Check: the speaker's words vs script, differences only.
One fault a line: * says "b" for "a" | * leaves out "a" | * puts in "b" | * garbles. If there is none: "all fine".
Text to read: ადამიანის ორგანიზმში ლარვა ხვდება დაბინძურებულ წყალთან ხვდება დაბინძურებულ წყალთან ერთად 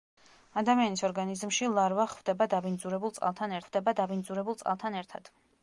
all fine